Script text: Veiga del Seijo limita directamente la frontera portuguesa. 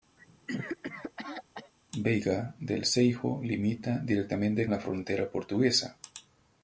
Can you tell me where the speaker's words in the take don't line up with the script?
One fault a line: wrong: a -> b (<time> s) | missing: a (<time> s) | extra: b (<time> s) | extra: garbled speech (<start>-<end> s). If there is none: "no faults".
no faults